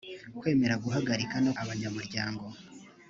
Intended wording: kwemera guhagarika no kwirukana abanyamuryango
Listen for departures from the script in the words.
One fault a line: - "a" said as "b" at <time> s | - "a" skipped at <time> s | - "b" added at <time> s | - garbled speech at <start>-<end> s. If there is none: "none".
- "kwirukana" skipped at 1.5 s